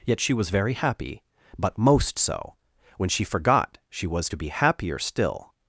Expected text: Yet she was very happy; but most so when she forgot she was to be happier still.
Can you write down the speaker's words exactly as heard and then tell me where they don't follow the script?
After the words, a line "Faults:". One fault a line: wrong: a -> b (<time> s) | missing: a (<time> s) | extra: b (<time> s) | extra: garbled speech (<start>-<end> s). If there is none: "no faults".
Yet she was very happy; but most so when she forgot she was to be happier still.
Faults:
no faults